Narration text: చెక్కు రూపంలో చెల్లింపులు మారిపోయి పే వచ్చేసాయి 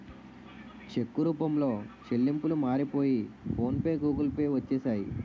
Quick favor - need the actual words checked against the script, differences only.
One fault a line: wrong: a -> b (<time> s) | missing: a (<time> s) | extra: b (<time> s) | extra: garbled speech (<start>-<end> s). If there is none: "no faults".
extra: ఫోన్ పే గూగుల్ (3.5 s)